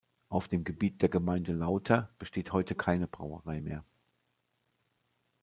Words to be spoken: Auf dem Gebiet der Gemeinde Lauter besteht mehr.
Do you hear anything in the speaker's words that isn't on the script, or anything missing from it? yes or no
yes